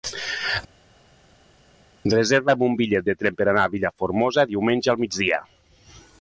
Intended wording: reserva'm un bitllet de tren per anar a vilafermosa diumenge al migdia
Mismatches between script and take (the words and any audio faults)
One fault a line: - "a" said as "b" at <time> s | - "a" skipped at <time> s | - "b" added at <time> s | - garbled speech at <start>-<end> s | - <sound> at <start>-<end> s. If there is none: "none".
none